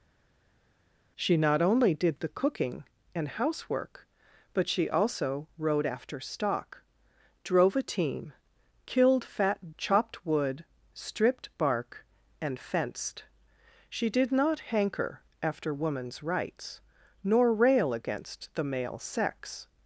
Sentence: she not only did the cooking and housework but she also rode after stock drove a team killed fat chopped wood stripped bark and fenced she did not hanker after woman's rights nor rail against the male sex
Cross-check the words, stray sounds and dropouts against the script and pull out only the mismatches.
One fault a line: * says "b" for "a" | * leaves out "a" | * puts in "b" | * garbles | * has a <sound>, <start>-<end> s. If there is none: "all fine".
all fine